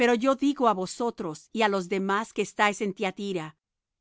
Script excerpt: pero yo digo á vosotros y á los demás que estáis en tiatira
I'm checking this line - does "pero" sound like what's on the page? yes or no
yes